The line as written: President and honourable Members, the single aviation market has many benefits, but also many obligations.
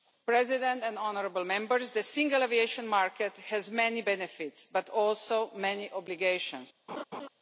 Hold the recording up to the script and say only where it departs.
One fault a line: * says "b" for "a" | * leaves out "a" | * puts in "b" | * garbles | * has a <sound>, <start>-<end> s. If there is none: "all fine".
* has a laugh, 6.9-7.3 s